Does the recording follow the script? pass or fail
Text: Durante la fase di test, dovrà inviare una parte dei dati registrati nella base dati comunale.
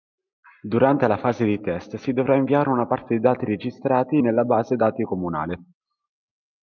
fail